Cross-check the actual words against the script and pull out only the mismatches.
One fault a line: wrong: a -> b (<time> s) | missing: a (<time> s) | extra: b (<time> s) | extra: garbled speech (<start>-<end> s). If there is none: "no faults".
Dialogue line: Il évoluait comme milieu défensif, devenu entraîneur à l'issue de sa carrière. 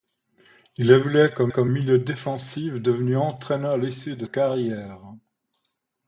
extra: comme (1.5 s)
missing: sa (4.3 s)